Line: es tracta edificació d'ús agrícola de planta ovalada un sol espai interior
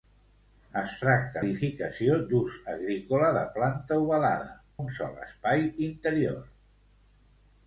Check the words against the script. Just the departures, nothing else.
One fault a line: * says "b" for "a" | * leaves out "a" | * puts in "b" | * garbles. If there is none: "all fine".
all fine